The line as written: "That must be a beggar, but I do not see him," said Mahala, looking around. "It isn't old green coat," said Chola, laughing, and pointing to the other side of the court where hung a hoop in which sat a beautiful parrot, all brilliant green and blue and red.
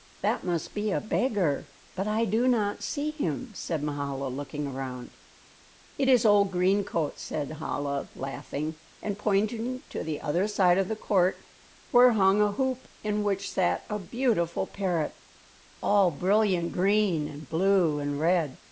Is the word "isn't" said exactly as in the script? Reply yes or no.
no